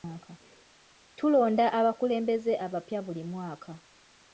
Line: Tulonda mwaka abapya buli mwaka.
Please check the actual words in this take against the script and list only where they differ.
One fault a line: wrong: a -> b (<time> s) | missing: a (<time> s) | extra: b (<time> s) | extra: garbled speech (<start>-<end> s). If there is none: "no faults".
wrong: mwaka -> abakulembeze (1.8 s)